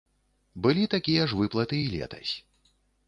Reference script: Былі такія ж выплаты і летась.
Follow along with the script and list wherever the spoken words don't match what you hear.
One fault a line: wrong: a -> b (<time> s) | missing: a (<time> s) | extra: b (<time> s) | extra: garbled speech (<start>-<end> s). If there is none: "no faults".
no faults